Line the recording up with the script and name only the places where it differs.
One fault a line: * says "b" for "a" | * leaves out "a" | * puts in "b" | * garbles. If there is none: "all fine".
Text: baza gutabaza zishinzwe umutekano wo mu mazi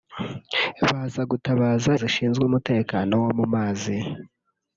all fine